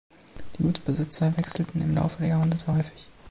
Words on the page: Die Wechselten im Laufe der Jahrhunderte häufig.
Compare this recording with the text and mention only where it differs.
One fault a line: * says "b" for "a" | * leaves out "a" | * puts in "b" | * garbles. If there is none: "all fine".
* puts in "Gutsbesitzer"